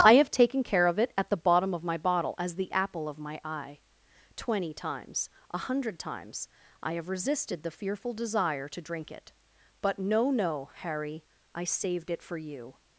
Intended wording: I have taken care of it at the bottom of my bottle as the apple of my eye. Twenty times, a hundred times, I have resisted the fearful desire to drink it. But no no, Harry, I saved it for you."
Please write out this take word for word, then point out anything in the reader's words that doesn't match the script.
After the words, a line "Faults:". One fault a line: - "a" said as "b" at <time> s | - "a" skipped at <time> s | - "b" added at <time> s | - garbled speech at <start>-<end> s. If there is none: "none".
I have taken care of it at the bottom of my bottle as the apple of my eye. Twenty times, a hundred times, I have resisted the fearful desire to drink it. But no no, Harry, I saved it for you."
Faults:
none